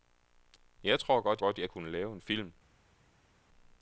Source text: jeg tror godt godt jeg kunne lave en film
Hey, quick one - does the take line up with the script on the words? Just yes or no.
yes